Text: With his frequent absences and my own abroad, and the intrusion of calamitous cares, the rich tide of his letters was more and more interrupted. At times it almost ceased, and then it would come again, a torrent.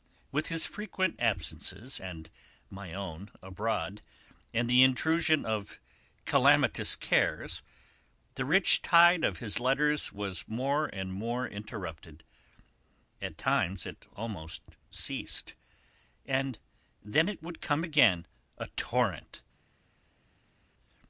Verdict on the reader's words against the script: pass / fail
pass